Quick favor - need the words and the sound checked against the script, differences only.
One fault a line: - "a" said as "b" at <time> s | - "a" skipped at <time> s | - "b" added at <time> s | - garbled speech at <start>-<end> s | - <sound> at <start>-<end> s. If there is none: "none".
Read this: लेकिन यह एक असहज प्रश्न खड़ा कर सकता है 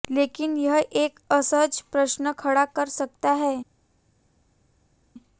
none